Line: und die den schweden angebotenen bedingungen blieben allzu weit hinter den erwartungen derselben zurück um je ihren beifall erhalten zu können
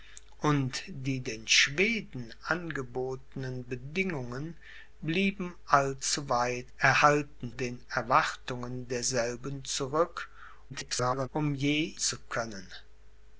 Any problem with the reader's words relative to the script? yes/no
yes